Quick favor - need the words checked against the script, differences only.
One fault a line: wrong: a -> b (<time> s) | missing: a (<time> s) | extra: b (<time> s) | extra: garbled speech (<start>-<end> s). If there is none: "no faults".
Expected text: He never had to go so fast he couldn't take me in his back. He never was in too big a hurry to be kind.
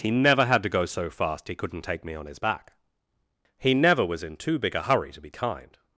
wrong: in -> on (2.1 s)